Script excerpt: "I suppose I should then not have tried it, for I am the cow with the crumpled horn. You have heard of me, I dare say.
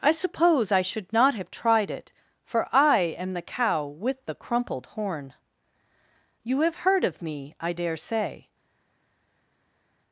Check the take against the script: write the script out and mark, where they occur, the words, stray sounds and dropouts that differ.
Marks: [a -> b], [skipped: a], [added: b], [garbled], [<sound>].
"I suppose I should [skipped: then] not have tried it, for I am the cow with the crumpled horn. You have heard of me, I dare say.